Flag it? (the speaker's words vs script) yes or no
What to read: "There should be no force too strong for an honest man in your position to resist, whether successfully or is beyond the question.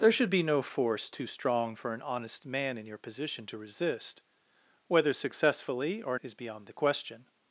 no